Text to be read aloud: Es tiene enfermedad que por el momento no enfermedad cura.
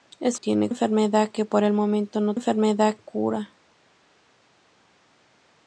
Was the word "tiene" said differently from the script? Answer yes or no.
no